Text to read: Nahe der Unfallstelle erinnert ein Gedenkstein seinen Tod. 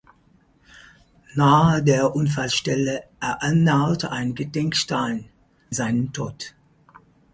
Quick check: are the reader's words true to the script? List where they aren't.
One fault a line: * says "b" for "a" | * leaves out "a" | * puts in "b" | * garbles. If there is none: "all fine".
all fine